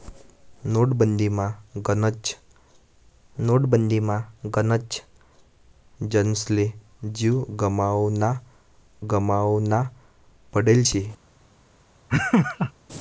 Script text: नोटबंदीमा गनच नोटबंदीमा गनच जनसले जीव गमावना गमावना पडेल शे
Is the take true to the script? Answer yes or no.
yes